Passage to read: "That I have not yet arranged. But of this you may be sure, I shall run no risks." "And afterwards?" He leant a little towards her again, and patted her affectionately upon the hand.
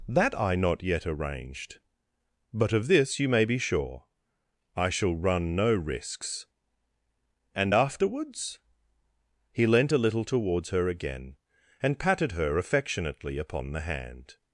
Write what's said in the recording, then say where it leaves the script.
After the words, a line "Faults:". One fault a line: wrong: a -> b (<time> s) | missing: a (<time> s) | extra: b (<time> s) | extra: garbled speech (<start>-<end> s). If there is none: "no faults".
"That I not yet arranged. But of this you may be sure, I shall run no risks." "And afterwards?" He leant a little towards her again, and patted her affectionately upon the hand.
Faults:
missing: have (0.6 s)